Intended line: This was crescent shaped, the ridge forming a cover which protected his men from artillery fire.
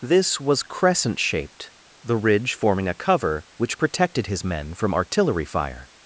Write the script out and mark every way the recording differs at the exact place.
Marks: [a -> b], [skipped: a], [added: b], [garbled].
This was crescent shaped, the ridge forming a cover which protected his men from artillery fire.